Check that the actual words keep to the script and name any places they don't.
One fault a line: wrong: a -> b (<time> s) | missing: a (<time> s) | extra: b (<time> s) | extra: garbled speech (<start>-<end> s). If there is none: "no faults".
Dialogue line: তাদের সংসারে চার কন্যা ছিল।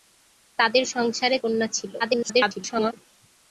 missing: চার (1.4 s)
extra: garbled speech (2.0-2.9 s)